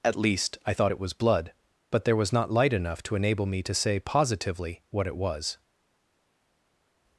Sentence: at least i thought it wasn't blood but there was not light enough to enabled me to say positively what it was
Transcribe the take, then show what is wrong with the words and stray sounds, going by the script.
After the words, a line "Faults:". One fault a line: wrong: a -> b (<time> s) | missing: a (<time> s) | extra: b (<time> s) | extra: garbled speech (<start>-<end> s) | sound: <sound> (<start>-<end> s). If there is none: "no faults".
at least i thought it was blood but there was not light enough to enable me to say positively what it was
Faults:
wrong: wasn't -> was (1.0 s)
wrong: enabled -> enable (3.1 s)